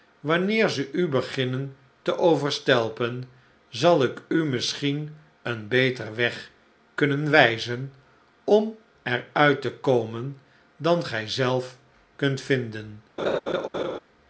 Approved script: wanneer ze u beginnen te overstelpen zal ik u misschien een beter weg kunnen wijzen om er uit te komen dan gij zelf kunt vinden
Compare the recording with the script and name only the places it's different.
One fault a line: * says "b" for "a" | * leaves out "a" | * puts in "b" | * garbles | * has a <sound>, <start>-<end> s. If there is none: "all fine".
* has a laugh, 13.2-14.0 s